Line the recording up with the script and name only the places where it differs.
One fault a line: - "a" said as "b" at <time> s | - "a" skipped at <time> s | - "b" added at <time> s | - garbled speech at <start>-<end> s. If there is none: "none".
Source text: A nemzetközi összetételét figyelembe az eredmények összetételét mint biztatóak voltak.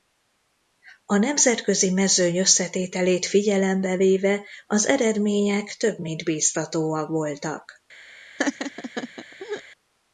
- "mezőny" added at 1.9 s
- "véve" added at 3.9 s
- "összetételét" said as "több" at 5.8 s